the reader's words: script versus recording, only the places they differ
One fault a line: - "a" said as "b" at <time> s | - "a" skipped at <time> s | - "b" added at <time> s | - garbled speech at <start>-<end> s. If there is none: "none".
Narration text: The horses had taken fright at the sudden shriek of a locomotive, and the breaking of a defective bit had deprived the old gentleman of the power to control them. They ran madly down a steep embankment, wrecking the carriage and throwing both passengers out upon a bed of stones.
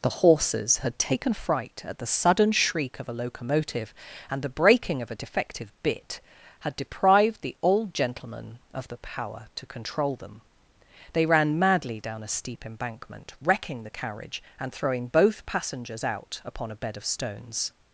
none